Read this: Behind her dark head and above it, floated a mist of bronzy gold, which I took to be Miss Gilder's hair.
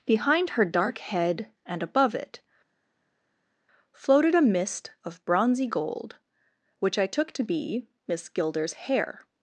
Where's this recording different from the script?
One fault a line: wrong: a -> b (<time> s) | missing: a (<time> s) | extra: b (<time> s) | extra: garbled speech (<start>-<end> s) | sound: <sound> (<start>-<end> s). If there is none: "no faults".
no faults